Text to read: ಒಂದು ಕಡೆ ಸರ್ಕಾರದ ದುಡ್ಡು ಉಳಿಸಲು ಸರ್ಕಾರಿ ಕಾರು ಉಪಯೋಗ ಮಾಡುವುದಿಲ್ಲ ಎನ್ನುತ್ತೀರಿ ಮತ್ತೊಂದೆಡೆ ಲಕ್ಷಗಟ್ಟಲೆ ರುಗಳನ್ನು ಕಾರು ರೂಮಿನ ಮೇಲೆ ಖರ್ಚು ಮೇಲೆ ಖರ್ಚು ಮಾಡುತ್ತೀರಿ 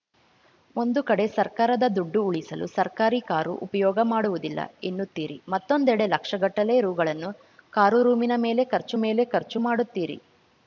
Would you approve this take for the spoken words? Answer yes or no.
yes